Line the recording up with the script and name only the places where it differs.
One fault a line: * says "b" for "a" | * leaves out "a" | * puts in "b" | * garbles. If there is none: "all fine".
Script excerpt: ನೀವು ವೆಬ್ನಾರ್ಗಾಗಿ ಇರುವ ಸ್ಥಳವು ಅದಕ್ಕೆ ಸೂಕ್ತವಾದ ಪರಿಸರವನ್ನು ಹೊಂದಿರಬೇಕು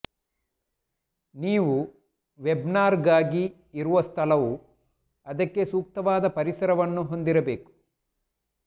all fine